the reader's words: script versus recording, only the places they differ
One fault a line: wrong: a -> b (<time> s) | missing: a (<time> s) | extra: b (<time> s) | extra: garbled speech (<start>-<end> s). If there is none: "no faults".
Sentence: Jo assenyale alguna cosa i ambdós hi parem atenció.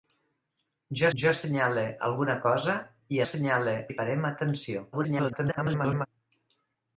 extra: jo (1.2 s)
wrong: ambdós -> assenyale (3.2 s)
extra: garbled speech (4.9-6.1 s)